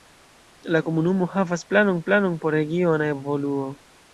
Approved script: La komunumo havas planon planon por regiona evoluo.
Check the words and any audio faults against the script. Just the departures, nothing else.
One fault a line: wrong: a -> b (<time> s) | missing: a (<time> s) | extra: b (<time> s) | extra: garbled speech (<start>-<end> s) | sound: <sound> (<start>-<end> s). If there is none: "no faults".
no faults